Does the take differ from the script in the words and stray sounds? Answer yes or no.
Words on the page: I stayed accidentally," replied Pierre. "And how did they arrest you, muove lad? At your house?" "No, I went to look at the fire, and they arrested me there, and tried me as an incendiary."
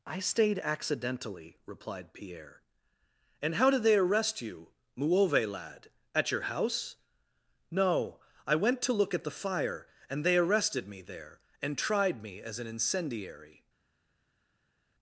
no